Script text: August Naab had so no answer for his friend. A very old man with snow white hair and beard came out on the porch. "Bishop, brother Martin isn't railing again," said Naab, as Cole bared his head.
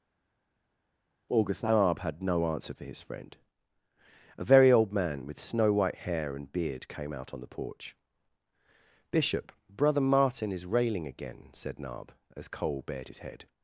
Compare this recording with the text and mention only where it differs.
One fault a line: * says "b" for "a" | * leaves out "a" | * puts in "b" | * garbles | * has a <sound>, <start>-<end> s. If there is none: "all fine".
* leaves out "so"
* says "is" for "isn't"